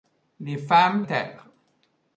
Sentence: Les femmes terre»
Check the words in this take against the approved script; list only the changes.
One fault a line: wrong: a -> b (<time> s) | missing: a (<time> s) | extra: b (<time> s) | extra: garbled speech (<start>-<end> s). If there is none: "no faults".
no faults